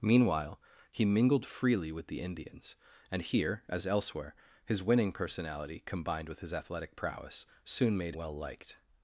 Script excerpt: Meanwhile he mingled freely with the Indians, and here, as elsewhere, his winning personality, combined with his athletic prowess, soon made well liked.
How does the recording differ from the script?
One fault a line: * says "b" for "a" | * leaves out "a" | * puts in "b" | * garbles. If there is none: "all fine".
all fine